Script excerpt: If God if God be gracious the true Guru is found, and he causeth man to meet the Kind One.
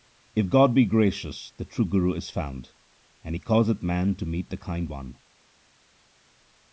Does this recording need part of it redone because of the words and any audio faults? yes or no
yes